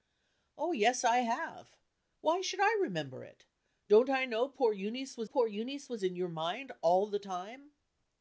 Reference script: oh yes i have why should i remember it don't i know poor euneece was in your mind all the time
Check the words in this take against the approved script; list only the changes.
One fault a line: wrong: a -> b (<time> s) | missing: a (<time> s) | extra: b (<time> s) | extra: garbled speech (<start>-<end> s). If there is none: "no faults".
extra: poor euneece was (5.2 s)